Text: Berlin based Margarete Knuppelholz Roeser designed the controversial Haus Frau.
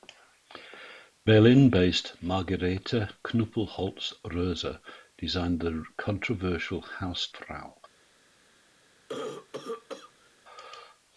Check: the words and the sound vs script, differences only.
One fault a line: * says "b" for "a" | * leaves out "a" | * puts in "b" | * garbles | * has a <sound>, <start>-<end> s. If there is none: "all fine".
* has a cough, 9.1-10.3 s